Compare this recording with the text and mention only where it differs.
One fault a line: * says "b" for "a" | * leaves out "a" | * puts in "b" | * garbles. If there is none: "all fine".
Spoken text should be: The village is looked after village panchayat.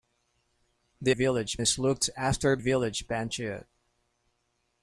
all fine